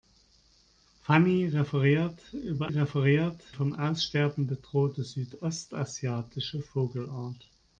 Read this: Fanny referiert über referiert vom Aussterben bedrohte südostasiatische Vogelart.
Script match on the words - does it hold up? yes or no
yes